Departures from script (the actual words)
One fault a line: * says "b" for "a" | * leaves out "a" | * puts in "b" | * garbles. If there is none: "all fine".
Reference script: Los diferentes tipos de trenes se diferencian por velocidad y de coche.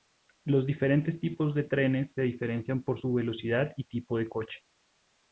* puts in "su"
* puts in "tipo"